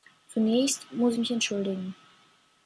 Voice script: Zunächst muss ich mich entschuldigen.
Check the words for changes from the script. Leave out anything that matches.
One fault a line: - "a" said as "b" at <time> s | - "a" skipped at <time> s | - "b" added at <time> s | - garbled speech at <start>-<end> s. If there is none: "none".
- "ich" skipped at 1.1 s